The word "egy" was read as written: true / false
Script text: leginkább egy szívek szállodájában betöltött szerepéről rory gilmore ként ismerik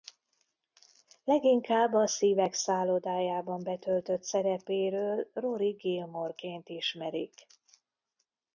false